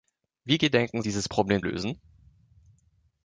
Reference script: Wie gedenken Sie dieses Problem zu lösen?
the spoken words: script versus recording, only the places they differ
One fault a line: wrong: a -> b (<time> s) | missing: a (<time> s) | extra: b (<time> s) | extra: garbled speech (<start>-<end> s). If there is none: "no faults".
missing: Sie (1.0 s)
missing: zu (1.6 s)